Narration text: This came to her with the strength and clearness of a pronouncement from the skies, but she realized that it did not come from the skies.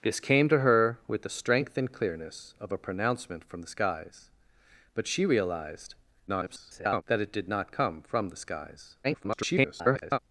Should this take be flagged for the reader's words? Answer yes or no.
yes